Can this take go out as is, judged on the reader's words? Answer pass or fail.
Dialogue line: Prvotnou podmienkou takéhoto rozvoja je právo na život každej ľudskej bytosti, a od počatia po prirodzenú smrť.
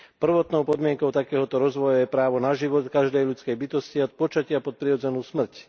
pass